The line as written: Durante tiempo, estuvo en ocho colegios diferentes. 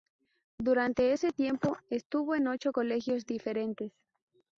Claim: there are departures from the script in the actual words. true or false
true